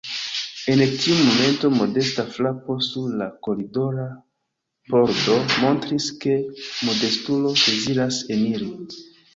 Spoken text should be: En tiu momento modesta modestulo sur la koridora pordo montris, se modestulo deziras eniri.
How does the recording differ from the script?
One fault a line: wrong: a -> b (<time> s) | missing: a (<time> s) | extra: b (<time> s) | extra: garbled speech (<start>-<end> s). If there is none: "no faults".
wrong: modestulo -> frapo (2.4 s)
wrong: se -> ke (6.2 s)